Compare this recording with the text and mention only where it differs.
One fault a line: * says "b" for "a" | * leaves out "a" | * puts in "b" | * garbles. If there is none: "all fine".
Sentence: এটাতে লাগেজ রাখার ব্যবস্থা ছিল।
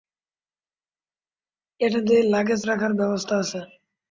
* says "আছে" for "ছিল"